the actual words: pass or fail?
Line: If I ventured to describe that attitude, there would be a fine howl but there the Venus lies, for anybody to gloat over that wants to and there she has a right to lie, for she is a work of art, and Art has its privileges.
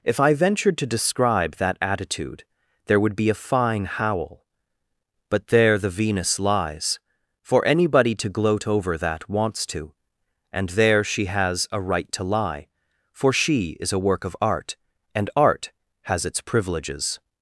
pass